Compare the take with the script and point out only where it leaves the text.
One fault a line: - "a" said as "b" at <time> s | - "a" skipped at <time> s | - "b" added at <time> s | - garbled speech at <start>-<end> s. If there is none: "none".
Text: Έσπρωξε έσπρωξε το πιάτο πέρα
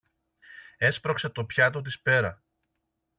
- "έσπρωξε" skipped at 1.3 s
- "της" added at 1.8 s